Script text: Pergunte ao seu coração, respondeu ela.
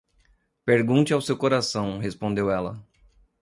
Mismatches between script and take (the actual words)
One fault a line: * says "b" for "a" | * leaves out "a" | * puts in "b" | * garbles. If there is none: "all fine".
all fine